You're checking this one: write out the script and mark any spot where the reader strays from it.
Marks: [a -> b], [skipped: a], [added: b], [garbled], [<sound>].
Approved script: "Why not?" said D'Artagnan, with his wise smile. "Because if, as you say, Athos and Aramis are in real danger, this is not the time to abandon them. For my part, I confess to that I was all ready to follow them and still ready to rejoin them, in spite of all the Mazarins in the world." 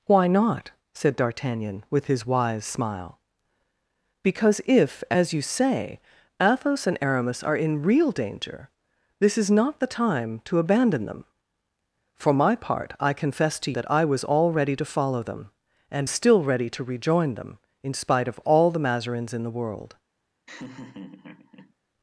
"Why not?" said D'Artagnan, with his wise smile. "Because if, as you say, Athos and Aramis are in real danger, this is not the time to abandon them. For my part, I confess to that I was all ready to follow them and still ready to rejoin them, in spite of all the Mazarins in the world." [laugh]